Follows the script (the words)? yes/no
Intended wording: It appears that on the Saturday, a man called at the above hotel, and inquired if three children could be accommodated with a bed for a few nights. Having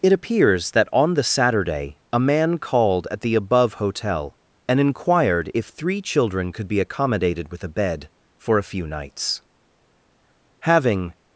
yes